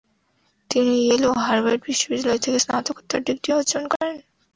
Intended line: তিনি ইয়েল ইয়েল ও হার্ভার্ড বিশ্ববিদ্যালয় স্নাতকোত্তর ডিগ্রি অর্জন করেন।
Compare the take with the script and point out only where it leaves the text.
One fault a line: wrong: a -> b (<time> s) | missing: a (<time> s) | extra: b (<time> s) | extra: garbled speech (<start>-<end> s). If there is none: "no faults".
missing: ইয়েল (1.2 s)
extra: থেকে (2.5 s)